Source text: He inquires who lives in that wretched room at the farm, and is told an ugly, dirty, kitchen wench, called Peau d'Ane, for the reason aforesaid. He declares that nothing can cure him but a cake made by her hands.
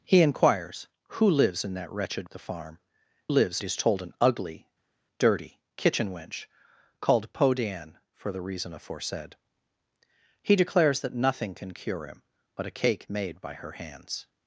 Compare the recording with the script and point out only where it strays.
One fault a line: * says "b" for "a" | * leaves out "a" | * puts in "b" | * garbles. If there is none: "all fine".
* leaves out "room"
* says "lives" for "and"